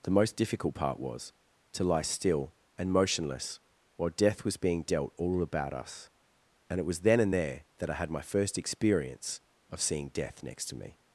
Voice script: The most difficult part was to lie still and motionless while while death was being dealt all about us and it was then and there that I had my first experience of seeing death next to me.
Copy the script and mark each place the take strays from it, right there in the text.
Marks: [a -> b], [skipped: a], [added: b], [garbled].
The most difficult part was to lie still and motionless while [skipped: while] death was being dealt all about us and it was then and there that I had my first experience of seeing death next to me.